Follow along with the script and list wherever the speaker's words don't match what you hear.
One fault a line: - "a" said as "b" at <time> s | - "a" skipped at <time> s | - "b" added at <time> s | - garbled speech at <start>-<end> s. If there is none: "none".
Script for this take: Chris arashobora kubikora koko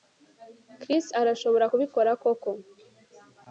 none